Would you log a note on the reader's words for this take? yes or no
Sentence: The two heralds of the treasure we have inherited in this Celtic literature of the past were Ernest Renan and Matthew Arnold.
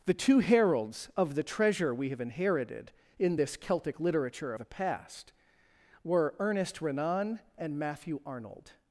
yes